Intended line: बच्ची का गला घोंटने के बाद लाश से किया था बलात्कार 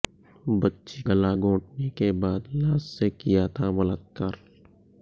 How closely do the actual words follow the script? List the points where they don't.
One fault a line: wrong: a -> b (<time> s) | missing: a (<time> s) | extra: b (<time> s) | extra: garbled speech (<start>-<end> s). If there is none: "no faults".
missing: का (1.0 s)